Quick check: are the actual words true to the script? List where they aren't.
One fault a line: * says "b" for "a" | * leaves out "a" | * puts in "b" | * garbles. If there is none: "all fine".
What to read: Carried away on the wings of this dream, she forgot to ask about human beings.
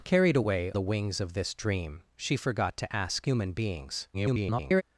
* leaves out "on"
* leaves out "about"
* garbles